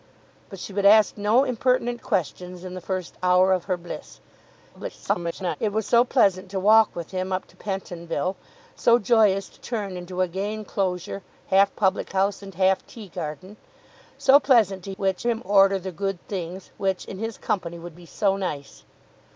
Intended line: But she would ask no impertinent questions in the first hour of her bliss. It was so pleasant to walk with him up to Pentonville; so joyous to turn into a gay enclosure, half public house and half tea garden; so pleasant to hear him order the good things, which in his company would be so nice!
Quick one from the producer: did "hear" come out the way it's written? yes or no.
no